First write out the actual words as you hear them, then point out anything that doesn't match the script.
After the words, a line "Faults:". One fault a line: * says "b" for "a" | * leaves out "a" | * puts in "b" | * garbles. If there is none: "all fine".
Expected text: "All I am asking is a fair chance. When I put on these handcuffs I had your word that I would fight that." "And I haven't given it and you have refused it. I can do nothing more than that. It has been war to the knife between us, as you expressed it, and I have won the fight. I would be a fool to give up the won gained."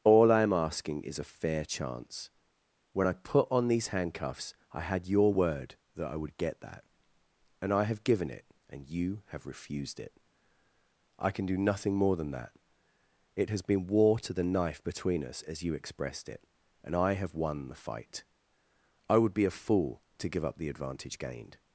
"All I am asking is a fair chance. When I put on these handcuffs I had your word that I would get that." "And I have given it and you have refused it. I can do nothing more than that. It has been war to the knife between us, as you expressed it, and I have won the fight. I would be a fool to give up the advantage gained."
Faults:
* says "get" for "fight"
* says "have" for "haven't"
* says "advantage" for "won"